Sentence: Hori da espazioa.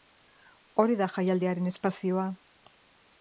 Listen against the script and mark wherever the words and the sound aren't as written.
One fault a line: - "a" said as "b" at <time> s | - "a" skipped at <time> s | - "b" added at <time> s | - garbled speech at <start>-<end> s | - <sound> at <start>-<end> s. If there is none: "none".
- "jaialdiaren" added at 1.2 s